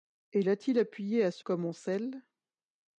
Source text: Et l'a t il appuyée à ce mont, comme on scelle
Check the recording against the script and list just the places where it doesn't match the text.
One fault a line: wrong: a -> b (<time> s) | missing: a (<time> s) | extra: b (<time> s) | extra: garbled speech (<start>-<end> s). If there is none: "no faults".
missing: mont (1.5 s)